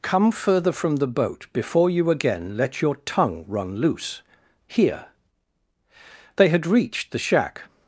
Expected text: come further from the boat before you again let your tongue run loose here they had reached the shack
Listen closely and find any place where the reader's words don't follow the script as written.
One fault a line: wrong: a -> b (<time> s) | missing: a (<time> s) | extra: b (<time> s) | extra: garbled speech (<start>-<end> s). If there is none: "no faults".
no faults